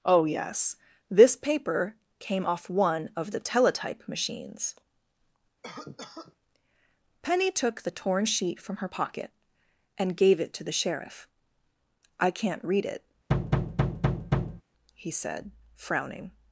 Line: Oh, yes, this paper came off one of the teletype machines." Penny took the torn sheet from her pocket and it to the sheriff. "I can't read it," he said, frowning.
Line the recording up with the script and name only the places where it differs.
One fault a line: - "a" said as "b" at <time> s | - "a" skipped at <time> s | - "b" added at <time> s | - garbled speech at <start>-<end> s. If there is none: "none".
- "gave" added at 10.2 s